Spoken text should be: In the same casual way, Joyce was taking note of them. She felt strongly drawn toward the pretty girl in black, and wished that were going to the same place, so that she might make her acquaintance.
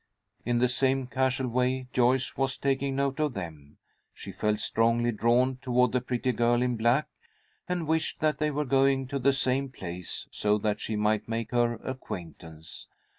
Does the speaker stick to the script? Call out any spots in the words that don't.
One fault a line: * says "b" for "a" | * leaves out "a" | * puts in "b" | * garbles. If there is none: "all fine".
* puts in "they"